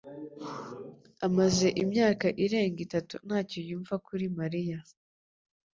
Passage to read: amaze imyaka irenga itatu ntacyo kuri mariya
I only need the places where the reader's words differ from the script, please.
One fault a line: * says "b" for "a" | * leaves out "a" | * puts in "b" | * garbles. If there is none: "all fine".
* puts in "yumva"